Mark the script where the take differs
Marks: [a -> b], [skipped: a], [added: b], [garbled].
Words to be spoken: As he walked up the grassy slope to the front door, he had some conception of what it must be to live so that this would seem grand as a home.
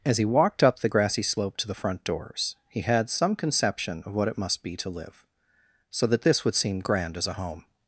As he walked up the grassy slope to the front [door, -> doors] he had some conception of what it must be to live so that this would seem grand as a home.